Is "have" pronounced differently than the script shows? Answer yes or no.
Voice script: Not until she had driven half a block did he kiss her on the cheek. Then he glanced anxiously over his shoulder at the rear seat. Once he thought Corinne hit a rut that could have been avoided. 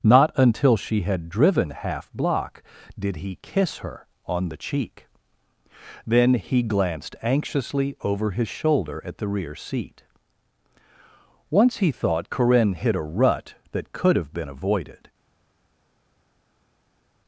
no